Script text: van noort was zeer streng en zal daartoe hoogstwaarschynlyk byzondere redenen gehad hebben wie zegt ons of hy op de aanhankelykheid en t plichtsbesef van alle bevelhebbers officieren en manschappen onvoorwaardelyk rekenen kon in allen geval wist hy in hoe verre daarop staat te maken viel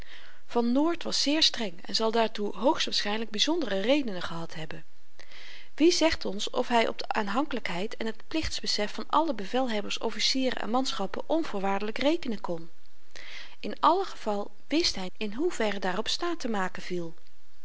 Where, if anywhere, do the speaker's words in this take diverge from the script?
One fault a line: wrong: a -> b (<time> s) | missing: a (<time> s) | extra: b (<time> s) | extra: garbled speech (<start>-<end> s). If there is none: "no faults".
no faults